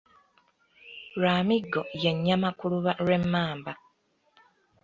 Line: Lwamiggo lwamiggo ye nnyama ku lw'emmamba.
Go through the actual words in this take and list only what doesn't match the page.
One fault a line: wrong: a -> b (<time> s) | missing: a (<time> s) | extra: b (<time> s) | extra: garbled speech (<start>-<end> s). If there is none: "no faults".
missing: lwamiggo (1.8 s)
extra: luba (2.7 s)